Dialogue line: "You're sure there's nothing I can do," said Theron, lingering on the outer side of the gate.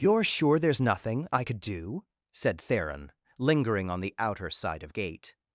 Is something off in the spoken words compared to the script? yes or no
yes